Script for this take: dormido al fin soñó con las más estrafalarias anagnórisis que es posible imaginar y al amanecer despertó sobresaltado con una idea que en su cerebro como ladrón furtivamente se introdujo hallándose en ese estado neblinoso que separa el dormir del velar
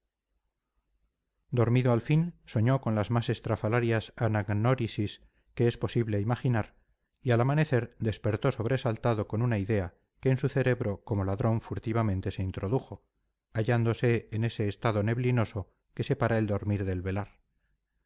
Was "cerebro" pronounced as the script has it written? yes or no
yes